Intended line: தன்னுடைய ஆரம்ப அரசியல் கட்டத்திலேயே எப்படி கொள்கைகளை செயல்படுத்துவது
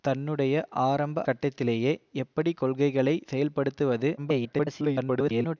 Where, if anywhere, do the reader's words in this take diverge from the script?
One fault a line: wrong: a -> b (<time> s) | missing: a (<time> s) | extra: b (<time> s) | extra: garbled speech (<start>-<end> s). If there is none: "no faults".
missing: அரசியல் (1.2 s)
extra: garbled speech (4.2-5.6 s)